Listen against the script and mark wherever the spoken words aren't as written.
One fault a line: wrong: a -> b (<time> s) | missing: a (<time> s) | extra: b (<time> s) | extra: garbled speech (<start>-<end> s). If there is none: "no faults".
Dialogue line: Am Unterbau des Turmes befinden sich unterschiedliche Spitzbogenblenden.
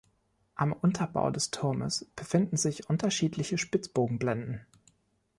no faults